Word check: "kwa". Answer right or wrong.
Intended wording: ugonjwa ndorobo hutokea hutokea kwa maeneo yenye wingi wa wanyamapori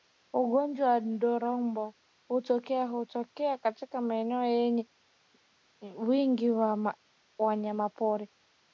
wrong